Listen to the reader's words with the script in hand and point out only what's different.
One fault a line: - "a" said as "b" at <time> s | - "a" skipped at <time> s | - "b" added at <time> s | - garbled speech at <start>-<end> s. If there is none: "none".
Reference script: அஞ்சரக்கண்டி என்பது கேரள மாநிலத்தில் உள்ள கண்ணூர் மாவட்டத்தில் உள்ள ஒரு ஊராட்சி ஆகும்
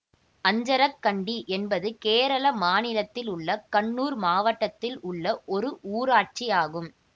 none